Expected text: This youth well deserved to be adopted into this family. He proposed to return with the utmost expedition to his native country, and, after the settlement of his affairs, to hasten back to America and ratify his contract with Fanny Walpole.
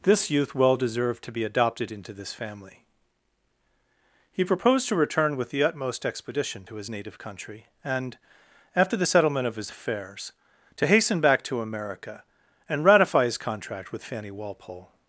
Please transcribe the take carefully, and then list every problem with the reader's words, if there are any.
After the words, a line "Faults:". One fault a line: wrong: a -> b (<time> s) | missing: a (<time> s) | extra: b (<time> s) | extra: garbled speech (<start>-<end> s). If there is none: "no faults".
This youth well deserved to be adopted into this family. He proposed to return with the utmost expedition to his native country, and, after the settlement of his affairs, to hasten back to America and ratify his contract with Fanny Walpole.
Faults:
no faults